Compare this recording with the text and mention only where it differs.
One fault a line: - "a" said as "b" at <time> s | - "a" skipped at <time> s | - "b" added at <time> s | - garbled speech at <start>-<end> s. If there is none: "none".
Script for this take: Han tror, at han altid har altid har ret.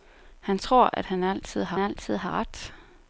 none